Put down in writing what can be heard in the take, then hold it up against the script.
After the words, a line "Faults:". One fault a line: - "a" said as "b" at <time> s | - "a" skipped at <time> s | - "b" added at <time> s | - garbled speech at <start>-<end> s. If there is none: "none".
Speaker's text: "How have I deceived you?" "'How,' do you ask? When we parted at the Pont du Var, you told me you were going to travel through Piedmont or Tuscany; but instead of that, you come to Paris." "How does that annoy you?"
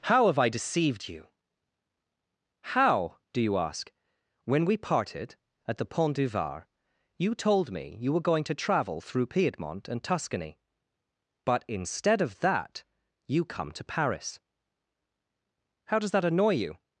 "How have I deceived you?" "'How,' do you ask? When we parted at the Pont du Var, you told me you were going to travel through Piedmont and Tuscany; but instead of that, you come to Paris." "How does that annoy you?"
Faults:
- "or" said as "and" at 9.9 s